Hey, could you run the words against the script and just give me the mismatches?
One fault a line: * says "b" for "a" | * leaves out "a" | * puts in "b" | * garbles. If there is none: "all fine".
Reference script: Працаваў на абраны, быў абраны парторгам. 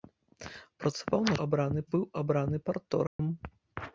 all fine